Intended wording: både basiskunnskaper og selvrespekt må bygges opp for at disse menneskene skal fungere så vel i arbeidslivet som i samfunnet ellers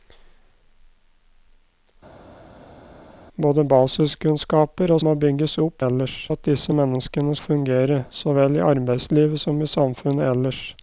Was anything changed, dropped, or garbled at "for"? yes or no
yes